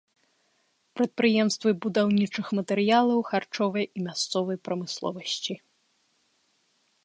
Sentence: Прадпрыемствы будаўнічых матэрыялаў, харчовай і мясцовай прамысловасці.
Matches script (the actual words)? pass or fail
pass